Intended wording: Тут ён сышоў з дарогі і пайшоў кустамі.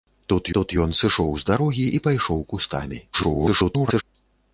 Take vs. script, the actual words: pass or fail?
fail